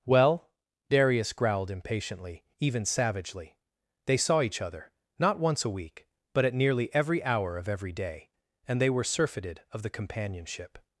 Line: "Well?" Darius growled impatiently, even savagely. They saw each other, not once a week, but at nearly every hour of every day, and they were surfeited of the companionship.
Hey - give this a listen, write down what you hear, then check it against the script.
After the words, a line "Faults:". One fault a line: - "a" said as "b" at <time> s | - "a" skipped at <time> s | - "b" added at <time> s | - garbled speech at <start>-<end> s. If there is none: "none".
"Well?" Darius growled impatiently, even savagely. They saw each other, not once a week, but at nearly every hour of every day, and they were surfeited of the companionship.
Faults:
none